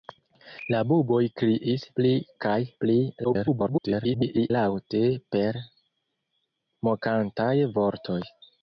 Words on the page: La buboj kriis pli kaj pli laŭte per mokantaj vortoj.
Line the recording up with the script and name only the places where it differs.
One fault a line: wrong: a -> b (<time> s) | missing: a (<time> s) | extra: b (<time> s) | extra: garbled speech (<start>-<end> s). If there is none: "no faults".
extra: garbled speech (3.2-4.5 s)